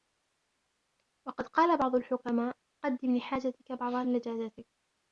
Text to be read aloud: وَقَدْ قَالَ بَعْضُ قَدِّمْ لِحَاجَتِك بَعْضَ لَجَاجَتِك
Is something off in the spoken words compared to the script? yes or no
yes